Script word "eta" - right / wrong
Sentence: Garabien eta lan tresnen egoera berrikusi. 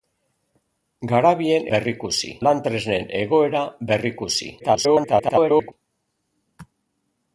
wrong